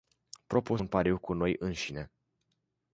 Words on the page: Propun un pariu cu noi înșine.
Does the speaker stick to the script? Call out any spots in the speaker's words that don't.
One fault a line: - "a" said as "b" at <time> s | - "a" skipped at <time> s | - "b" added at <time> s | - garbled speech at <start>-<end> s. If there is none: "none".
none